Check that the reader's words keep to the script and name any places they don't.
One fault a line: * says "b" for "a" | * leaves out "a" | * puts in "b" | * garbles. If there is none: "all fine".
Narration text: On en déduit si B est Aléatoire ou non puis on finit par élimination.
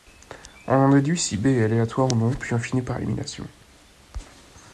all fine